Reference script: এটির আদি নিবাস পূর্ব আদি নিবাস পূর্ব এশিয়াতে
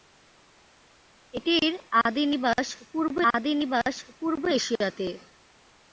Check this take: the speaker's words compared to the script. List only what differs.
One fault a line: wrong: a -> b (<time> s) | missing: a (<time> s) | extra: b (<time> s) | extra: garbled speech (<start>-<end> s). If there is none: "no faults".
no faults